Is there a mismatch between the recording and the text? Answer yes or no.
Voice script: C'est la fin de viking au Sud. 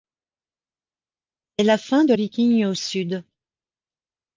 no